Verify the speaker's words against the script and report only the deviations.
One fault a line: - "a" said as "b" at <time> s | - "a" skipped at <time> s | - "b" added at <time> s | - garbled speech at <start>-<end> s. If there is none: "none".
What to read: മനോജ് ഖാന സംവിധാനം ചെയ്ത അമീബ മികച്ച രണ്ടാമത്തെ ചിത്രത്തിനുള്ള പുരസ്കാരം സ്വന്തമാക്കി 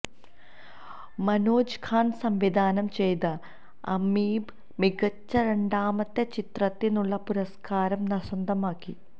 none